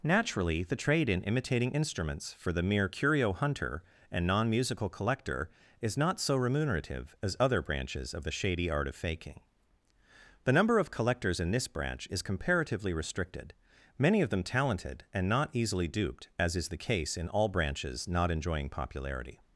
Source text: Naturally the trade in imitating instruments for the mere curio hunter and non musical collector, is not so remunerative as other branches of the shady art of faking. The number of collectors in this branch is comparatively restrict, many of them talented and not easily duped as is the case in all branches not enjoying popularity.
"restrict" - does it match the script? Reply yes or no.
no